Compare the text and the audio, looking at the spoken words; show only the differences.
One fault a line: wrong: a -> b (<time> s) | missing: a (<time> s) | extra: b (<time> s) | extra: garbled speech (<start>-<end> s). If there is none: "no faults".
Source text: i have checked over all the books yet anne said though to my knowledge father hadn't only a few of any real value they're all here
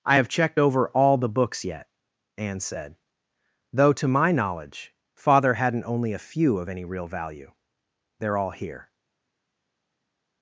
no faults